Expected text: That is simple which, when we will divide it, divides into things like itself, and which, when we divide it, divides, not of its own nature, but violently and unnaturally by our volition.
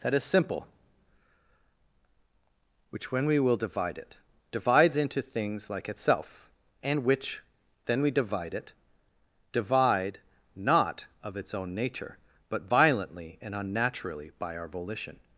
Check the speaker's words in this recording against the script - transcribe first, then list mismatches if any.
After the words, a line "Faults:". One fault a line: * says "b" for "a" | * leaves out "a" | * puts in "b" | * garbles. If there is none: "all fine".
That is simple which, when we will divide it, divides into things like itself, and which, then we divide it, divide, not of its own nature, but violently and unnaturally by our volition.
Faults:
* says "then" for "when"
* says "divide" for "divides"